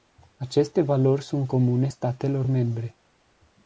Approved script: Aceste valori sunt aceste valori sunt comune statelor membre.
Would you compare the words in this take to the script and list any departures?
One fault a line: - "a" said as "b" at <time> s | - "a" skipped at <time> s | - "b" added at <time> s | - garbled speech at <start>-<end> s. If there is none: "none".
- "aceste valori sunt" skipped at 1.5 s